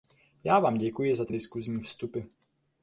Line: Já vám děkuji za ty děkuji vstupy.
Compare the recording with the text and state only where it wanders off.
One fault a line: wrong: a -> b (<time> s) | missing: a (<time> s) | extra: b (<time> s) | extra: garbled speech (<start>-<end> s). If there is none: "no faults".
wrong: děkuji -> diskusní (1.3 s)